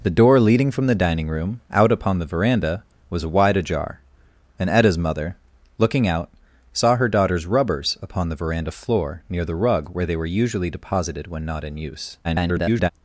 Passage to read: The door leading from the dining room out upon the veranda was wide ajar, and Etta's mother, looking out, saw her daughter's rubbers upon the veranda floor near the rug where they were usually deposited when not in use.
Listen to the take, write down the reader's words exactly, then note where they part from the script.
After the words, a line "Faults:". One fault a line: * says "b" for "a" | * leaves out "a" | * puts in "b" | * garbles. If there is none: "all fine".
The door leading from the dining room out upon the veranda was wide ajar, and Etta's mother, looking out, saw her daughter's rubbers upon the veranda floor near the rug where they were usually deposited when not in use. [garbled]
Faults:
* garbles